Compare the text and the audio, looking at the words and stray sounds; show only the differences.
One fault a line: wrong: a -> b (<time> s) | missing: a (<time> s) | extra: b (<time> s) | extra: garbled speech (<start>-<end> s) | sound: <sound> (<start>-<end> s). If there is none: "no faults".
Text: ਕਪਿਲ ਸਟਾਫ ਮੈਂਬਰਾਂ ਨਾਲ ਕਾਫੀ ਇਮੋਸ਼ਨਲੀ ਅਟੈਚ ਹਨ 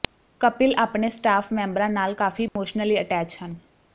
extra: ਆਪਣੇ (0.8 s)
sound: dropout (2.5-2.6 s)